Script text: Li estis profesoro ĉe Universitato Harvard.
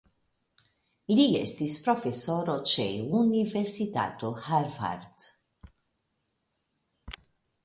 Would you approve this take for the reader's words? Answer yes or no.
yes